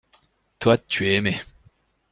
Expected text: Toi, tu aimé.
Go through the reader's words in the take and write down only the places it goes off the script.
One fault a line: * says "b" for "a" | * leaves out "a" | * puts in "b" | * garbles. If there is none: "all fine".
* puts in "es"